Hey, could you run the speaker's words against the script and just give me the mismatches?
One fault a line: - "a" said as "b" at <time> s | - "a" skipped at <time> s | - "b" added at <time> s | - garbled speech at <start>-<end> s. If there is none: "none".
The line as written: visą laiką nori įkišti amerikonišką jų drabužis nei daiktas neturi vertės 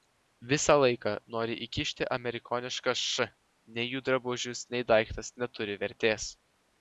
- "š nei" added at 3.0 s